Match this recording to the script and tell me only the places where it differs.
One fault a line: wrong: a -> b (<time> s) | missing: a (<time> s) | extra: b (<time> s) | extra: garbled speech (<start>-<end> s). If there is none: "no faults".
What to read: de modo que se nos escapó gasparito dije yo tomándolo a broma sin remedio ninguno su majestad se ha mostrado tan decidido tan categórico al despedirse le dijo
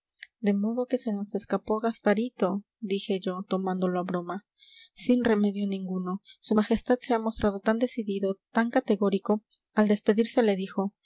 no faults